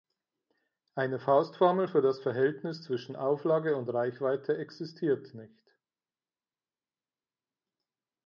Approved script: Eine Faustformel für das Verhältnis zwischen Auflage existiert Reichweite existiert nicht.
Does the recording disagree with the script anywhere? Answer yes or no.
yes